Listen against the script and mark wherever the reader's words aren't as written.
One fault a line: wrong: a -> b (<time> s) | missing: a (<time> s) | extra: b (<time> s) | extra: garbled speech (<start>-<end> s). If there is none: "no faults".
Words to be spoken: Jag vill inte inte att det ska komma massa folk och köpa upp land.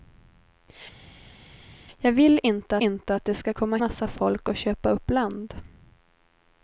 no faults